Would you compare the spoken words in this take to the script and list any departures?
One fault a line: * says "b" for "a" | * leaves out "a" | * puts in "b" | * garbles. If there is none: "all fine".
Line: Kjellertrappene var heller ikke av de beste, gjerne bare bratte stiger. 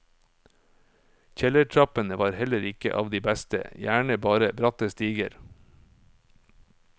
all fine